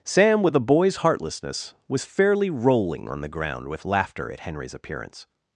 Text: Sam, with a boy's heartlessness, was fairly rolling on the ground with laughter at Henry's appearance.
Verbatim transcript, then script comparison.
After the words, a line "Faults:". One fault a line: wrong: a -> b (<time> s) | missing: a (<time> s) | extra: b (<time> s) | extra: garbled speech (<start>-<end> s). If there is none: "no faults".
Sam, with a boy's heartlessness, was fairly rolling on the ground with laughter at Henry's appearance.
Faults:
no faults